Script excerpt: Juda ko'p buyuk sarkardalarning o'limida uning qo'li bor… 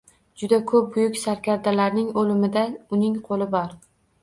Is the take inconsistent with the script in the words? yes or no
no